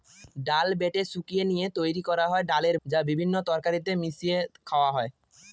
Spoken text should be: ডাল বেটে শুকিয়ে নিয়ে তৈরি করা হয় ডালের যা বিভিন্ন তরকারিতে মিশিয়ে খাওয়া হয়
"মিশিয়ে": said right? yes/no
yes